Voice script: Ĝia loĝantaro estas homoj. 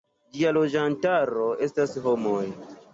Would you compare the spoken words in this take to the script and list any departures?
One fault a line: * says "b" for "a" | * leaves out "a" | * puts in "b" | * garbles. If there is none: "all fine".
all fine